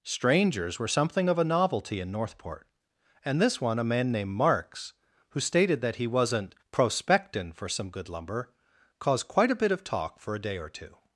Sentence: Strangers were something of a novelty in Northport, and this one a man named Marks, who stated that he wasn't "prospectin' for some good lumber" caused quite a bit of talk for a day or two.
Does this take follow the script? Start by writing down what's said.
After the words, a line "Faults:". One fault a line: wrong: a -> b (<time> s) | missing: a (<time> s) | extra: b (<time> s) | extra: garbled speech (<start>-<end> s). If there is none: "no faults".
Strangers were something of a novelty in Northport, and this one a man named Marks, who stated that he wasn't "prospectin' for some good lumber" caused quite a bit of talk for a day or two.
Faults:
no faults